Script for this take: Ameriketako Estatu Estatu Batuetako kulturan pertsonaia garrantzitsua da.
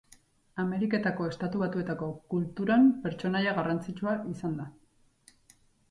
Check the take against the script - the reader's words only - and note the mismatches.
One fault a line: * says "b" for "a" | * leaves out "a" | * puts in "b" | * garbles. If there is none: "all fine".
* leaves out "Estatu"
* puts in "izan"